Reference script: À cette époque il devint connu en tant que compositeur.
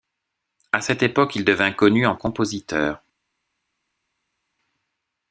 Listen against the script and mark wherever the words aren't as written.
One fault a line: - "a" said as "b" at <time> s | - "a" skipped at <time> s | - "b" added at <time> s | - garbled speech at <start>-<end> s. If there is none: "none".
- "tant que" skipped at 2.1 s